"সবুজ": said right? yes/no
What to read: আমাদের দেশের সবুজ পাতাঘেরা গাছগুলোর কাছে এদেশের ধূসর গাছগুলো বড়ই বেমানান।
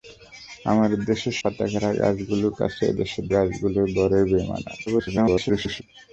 no